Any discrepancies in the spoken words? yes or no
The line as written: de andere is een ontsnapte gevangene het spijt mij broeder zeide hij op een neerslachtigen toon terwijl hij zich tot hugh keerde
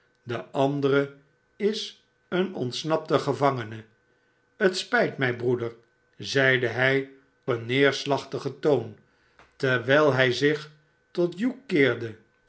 yes